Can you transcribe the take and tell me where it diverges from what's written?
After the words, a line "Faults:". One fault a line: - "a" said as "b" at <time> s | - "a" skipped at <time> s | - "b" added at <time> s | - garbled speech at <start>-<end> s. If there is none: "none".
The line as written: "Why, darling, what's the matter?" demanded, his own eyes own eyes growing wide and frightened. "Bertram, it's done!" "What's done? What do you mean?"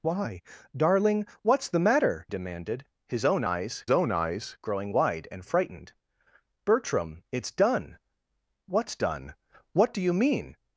"Why, darling, what's the matter?" demanded, his own eyes own eyes growing wide and frightened. "Bertram, it's done!" "What's done? What do you mean?"
Faults:
none